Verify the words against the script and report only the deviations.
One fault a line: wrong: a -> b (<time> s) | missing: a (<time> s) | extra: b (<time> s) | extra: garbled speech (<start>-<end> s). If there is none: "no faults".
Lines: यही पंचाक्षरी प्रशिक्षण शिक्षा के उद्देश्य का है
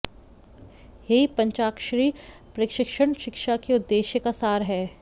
extra: सार (4.3 s)